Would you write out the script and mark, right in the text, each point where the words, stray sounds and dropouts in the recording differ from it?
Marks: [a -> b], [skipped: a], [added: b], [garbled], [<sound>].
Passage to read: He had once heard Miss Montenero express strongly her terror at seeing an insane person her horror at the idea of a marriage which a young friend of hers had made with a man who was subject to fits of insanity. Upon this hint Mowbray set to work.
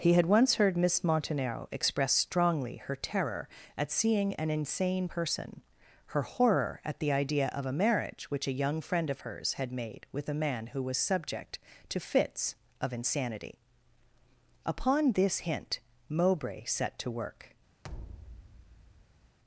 He had once heard Miss Montenero express strongly her terror at seeing an insane person her horror at the idea of a marriage which a young friend of hers had made with a man who was subject to fits of insanity. Upon this hint Mowbray set to work. [thud]